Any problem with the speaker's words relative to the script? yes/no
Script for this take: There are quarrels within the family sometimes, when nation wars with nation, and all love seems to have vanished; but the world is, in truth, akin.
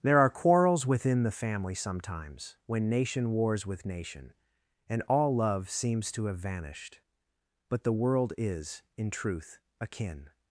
no